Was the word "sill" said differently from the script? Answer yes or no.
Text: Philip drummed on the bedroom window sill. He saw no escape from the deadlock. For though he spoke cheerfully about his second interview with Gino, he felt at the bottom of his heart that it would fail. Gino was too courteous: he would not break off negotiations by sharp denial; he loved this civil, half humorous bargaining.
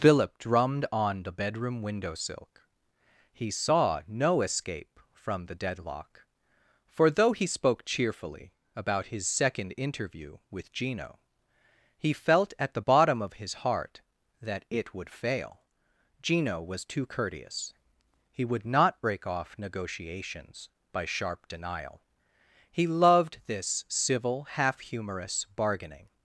yes